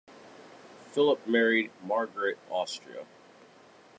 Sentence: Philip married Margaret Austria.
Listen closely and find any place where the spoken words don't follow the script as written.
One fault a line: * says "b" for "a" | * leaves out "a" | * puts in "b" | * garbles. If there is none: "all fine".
all fine